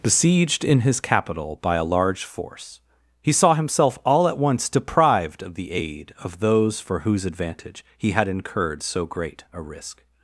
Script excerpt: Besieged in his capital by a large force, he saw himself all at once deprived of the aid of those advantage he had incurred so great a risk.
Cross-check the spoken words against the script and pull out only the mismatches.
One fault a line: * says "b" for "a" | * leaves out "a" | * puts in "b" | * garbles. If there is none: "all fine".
* puts in "for whose"